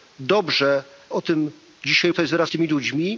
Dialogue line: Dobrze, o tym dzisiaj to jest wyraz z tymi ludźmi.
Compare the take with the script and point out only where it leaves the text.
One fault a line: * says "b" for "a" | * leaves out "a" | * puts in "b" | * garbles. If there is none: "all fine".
all fine